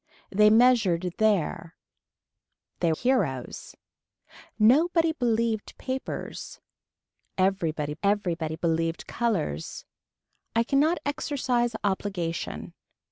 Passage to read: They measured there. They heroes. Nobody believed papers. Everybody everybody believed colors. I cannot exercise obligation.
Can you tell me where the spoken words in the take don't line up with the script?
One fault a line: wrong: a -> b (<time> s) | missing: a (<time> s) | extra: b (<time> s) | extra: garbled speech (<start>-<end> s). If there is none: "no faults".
no faults